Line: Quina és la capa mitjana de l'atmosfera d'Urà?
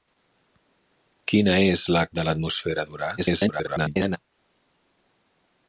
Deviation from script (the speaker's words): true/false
true